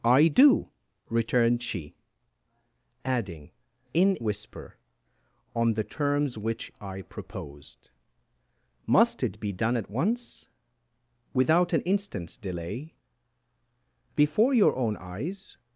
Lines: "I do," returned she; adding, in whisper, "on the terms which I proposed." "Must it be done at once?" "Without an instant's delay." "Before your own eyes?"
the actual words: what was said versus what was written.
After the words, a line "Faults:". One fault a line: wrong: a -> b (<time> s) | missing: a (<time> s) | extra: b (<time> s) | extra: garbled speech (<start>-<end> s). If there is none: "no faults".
"I do," returned she; adding, in whisper, "on the terms which I proposed." "Must it be done at once?" "Without an instant's delay." "Before your own eyes?"
Faults:
no faults